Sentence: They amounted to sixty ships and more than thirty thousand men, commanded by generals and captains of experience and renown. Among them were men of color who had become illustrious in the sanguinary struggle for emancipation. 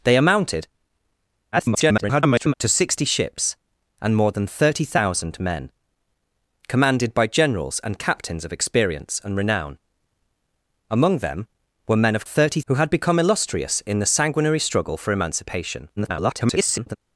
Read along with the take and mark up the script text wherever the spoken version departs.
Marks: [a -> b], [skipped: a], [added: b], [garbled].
They amounted [garbled] to sixty ships and more than thirty thousand men, commanded by generals and captains of experience and renown. Among them were men of [color -> thirty] who had become illustrious in the sanguinary struggle for emancipation. [garbled]